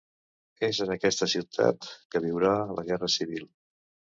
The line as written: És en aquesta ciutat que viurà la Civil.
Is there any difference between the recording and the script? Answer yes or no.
yes